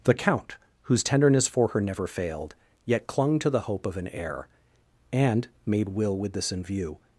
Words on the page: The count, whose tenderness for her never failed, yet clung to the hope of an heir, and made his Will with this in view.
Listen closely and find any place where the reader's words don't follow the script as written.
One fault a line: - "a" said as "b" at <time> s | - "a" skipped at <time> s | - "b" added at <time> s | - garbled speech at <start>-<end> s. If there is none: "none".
- "his" skipped at 5.9 s